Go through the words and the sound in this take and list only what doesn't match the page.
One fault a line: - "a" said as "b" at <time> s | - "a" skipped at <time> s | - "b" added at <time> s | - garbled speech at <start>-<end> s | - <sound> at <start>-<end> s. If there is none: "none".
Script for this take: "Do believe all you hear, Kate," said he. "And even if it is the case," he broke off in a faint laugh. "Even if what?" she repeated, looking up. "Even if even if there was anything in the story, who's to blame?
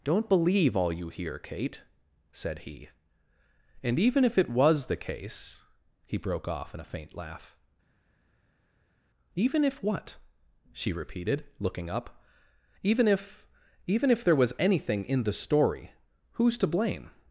- "Do" said as "Don't" at 0.0 s
- "is" said as "was" at 4.5 s